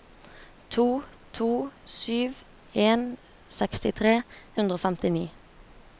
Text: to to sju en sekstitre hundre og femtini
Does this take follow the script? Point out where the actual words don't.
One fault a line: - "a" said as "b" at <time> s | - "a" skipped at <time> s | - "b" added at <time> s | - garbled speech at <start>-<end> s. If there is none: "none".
none